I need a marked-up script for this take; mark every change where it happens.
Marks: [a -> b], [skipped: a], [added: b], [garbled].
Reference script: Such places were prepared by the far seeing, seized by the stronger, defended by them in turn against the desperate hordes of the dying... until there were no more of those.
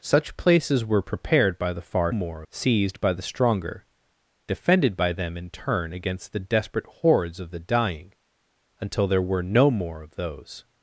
Such places were prepared by the far [seeing, -> more] seized by the stronger, defended by them in turn against the desperate hordes of the dying... until there were no more of those.